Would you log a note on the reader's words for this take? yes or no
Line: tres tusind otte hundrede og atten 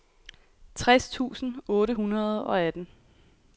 no